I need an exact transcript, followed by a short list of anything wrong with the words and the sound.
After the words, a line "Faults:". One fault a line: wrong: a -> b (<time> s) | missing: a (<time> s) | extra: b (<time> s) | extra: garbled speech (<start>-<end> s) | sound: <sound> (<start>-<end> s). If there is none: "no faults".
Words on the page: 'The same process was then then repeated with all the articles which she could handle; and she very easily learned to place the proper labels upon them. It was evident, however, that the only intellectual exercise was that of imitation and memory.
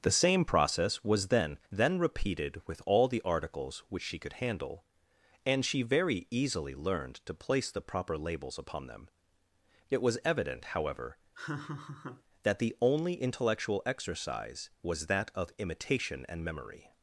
'The same process was then then repeated with all the articles which she could handle; and she very easily learned to place the proper labels upon them. It was evident, however, that the only intellectual exercise was that of imitation and memory.
Faults:
sound: laugh (11.3-12.2 s)